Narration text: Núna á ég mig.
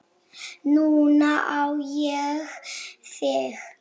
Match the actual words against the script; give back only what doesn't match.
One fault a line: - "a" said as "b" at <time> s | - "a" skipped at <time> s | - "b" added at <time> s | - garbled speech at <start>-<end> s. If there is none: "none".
- "mig" said as "þig" at 3.1 s